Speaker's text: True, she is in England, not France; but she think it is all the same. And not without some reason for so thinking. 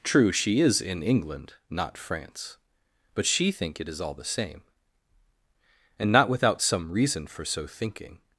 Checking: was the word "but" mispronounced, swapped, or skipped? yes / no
no